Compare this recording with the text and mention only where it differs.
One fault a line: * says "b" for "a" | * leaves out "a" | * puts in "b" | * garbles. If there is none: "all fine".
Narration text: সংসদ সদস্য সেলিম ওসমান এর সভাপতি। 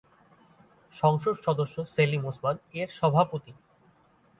all fine